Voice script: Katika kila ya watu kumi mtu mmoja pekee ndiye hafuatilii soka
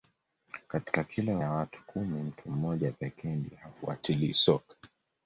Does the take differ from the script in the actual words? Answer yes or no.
no